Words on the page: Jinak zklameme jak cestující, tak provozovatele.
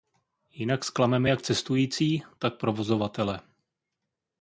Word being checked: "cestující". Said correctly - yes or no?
yes